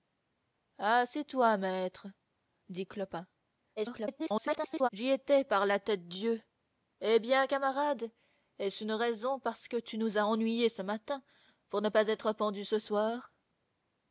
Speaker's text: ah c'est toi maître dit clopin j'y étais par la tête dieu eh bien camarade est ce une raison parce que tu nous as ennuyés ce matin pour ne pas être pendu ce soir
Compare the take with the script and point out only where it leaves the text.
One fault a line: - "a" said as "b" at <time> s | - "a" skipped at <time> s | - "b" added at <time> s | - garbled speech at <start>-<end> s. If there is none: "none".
- garbled speech at 3.8-4.9 s